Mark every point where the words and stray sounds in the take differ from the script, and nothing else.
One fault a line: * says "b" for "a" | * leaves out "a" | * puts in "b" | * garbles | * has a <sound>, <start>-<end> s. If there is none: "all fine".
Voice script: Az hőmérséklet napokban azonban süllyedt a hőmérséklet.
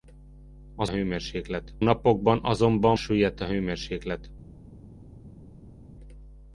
all fine